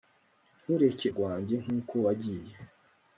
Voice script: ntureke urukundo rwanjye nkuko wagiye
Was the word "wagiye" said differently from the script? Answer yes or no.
no